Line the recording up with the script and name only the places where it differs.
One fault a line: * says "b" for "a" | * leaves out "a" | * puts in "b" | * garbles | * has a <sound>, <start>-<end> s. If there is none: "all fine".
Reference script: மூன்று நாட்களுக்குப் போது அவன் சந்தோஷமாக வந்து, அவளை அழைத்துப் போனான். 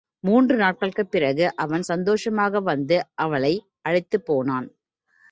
* says "பிறகு" for "போது"